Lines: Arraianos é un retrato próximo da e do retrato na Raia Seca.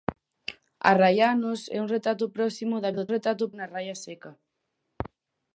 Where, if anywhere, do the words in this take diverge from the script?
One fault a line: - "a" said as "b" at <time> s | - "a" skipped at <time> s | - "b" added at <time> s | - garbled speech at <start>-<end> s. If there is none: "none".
none